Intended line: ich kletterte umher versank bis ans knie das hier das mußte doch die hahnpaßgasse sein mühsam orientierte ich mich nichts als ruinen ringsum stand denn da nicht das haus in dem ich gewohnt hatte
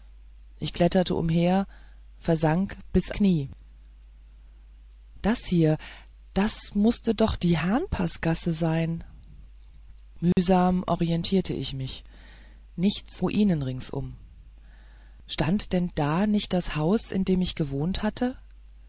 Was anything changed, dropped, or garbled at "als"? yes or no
yes